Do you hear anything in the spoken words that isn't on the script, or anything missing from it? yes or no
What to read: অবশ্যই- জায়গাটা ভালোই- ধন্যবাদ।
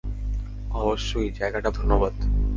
yes